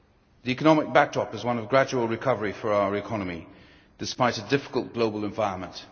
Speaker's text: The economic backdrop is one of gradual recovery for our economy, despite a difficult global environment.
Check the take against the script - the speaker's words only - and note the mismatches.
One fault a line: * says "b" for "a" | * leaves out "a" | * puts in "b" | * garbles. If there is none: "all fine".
all fine